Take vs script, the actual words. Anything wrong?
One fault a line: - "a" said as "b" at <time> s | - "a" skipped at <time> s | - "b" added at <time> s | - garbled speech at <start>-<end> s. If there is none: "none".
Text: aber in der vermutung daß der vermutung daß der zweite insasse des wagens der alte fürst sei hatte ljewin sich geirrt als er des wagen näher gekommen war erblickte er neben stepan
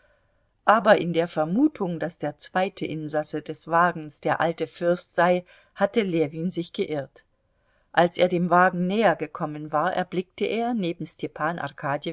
- "vermutung daß der" skipped at 2.4 s
- "des" said as "dem" at 8.3 s